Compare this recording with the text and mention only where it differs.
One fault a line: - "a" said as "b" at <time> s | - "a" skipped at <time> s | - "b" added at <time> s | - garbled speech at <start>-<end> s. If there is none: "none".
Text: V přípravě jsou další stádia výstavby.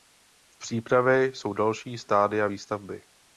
none